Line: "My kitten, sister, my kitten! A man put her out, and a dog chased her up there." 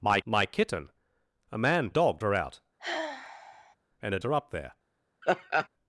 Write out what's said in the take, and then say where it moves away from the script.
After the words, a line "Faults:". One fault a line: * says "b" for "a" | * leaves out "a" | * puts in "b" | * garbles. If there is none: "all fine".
"My my kitten! A man dog her out, and a her up there."
Faults:
* leaves out "kitten sister"
* says "dog" for "put"
* leaves out "dog chased"